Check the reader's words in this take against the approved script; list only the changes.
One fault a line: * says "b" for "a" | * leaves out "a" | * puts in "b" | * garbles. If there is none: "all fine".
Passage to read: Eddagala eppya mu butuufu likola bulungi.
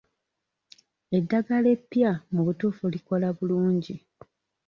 all fine